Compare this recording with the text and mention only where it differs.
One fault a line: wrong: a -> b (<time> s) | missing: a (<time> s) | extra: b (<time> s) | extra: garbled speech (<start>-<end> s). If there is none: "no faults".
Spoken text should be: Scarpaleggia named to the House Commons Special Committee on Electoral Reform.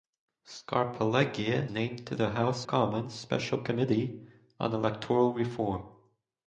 no faults